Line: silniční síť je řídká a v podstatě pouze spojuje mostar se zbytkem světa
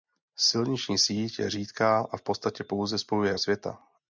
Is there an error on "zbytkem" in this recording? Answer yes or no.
yes